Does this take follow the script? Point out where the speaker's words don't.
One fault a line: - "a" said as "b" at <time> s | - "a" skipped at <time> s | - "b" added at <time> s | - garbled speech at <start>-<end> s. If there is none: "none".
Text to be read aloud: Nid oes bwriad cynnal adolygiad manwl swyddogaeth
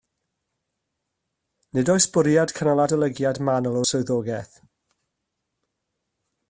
none